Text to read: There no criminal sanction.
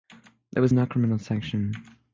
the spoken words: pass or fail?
fail